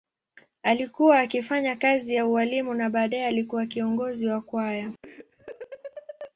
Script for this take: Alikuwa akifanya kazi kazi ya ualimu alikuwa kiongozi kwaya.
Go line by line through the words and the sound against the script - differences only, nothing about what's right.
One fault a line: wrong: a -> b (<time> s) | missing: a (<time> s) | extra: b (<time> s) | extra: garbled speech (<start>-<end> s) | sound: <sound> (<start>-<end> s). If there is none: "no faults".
missing: kazi (2.1 s)
extra: na baadaye (2.7 s)
extra: wa (4.3 s)
sound: laugh (5.0-6.3 s)